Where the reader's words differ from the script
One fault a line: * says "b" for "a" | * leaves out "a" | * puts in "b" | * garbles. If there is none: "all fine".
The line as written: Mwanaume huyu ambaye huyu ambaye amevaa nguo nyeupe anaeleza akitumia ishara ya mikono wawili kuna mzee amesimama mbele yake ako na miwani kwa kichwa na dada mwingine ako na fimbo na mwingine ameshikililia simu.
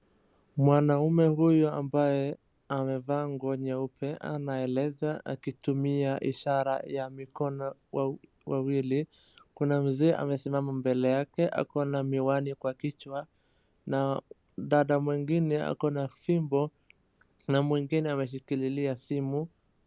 * leaves out "huyu ambaye"